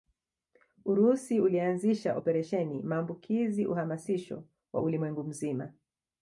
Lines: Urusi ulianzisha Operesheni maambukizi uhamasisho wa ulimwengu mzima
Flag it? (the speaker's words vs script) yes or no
no